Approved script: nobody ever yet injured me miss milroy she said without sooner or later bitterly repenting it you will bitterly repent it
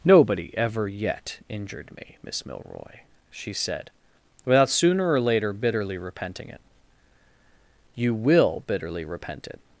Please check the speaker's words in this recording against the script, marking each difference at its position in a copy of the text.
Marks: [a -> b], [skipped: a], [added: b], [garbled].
nobody ever yet injured me miss milroy she said without sooner or later bitterly repenting it you will bitterly repent it